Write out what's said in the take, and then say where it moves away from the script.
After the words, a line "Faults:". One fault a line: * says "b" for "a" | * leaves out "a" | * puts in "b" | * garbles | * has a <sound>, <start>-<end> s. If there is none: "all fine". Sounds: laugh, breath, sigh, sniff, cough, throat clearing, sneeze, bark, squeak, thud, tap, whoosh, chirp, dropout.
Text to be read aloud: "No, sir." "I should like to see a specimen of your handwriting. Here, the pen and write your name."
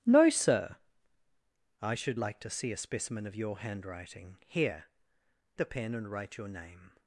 "No, sir." "I should like to see a specimen of your handwriting. Here, the pen and write your name."
Faults:
all fine